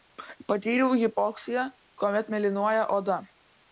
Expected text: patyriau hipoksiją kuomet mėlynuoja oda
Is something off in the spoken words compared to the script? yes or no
no